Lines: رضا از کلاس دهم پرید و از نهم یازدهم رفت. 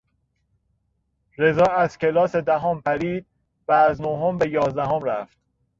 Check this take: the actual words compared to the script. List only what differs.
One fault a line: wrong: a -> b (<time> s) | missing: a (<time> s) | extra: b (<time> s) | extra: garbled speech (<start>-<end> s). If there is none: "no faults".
extra: به (4.4 s)